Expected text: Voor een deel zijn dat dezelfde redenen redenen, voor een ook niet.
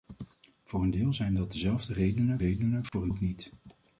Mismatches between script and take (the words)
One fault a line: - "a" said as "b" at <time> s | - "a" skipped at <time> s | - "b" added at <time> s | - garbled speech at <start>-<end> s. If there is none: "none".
none